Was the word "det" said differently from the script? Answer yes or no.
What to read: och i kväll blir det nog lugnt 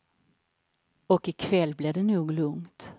no